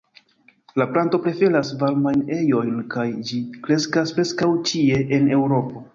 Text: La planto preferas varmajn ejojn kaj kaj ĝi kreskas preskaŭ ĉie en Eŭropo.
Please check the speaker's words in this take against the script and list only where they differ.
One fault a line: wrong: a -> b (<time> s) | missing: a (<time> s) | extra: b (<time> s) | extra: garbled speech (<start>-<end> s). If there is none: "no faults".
missing: kaj (3.1 s)